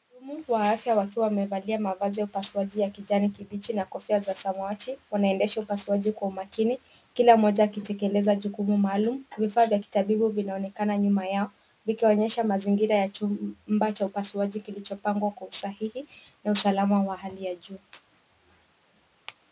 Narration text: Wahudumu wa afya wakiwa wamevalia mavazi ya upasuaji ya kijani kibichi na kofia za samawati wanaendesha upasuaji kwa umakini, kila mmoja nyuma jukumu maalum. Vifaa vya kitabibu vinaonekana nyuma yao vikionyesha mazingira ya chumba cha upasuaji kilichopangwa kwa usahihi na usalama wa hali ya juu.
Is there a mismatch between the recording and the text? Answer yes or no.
yes